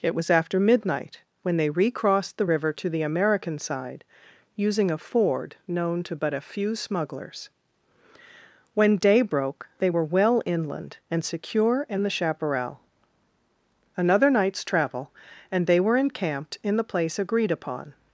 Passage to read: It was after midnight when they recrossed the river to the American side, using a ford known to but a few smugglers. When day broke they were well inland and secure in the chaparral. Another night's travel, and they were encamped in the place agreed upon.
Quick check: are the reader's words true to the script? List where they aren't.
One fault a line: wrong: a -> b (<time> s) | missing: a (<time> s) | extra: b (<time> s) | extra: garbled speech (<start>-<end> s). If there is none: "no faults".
no faults